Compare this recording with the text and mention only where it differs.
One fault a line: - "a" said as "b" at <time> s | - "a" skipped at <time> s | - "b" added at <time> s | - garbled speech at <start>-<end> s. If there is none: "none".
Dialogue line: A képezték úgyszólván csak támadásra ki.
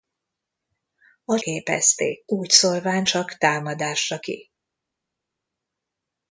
none